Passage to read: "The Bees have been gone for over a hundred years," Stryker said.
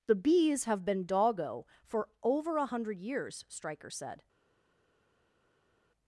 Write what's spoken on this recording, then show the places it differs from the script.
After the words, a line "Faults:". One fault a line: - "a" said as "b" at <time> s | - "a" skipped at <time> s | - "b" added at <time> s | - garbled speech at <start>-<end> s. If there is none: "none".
"The Bees have been doggo for over a hundred years," Stryker said.
Faults:
- "gone" said as "doggo" at 1.1 s